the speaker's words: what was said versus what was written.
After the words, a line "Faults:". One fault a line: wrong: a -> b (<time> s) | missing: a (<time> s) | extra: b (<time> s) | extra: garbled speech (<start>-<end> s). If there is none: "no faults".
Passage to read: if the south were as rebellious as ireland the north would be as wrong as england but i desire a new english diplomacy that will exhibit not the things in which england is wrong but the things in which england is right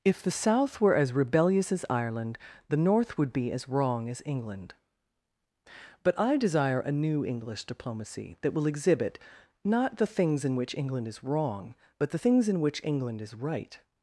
if the south were as rebellious as ireland the north would be as wrong as england but i desire a new english diplomacy that will exhibit not the things in which england is wrong but the things in which england is right
Faults:
no faults